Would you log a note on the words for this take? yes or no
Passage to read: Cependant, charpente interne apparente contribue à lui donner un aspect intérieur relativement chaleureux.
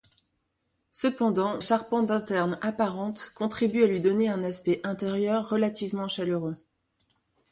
no